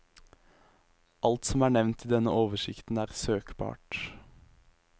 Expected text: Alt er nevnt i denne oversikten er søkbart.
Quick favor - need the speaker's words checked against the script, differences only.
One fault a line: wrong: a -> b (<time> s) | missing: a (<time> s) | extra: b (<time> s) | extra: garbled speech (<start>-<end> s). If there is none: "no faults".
extra: som (1.5 s)